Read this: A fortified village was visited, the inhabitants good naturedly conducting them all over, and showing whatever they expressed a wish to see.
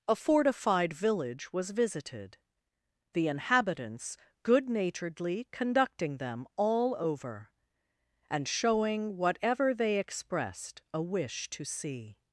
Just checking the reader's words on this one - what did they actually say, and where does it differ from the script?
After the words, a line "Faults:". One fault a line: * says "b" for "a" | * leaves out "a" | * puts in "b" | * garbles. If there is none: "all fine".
A fortified village was visited, the inhabitants good naturedly conducting them all over, and showing whatever they expressed a wish to see.
Faults:
all fine